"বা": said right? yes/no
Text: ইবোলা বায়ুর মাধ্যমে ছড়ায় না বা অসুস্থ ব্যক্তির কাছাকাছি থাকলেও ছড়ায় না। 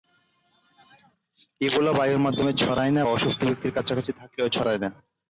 no